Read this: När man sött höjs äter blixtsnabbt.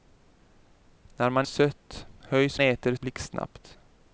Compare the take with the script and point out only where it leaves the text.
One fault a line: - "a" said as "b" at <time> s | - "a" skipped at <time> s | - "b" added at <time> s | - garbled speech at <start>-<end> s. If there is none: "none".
none